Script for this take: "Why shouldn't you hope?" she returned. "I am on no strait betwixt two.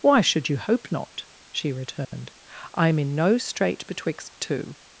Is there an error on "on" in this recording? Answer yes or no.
yes